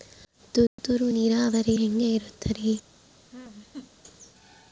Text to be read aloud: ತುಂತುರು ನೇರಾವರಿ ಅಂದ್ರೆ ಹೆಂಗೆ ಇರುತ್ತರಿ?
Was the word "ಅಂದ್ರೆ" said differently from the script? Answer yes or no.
yes